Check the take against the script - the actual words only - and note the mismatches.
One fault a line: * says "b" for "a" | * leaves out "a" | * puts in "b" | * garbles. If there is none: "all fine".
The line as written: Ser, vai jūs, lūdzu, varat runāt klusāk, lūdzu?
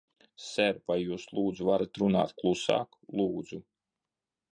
all fine